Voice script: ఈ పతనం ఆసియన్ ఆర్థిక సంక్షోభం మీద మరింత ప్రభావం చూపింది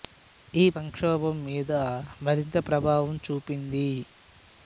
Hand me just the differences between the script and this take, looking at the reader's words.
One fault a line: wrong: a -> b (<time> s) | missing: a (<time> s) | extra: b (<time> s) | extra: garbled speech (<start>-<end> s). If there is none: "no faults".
missing: పతనం ఆసియన్ ఆర్థిక (0.7 s)